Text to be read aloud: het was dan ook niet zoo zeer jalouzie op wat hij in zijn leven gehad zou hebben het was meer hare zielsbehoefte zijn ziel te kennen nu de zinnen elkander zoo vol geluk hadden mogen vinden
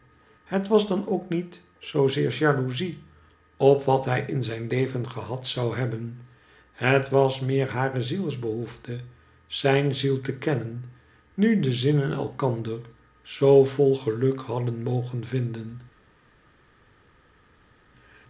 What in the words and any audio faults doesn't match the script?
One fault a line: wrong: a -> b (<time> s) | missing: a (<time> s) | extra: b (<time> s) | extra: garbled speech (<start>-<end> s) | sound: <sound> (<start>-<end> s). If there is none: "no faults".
no faults